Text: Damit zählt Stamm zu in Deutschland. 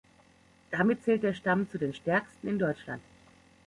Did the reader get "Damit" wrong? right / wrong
right